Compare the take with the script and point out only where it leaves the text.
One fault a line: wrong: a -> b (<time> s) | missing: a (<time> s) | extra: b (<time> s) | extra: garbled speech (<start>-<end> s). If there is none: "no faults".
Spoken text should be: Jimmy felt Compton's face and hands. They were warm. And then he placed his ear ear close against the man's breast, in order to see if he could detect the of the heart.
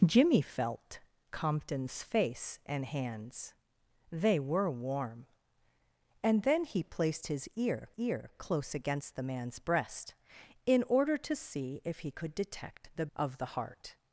no faults